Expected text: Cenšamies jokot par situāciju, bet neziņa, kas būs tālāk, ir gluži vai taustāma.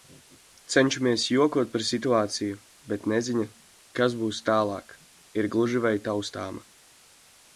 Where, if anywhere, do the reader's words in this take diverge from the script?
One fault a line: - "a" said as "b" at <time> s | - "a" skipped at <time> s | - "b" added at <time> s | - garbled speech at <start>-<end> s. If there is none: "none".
none